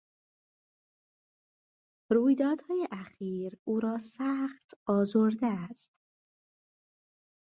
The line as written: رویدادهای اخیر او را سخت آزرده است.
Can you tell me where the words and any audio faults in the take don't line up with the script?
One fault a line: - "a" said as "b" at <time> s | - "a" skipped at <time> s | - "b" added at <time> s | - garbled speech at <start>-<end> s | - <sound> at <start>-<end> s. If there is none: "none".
none